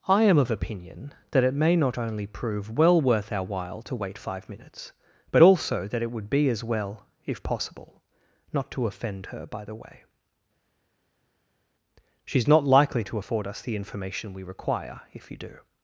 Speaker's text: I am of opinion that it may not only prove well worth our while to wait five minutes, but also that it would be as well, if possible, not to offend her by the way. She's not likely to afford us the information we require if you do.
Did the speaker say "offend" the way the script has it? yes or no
yes